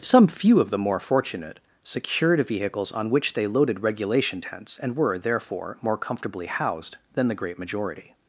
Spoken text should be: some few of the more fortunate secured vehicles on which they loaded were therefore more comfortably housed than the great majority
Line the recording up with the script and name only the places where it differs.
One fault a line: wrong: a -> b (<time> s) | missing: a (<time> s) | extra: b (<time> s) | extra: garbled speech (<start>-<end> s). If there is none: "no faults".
extra: regulation tents and (3.8 s)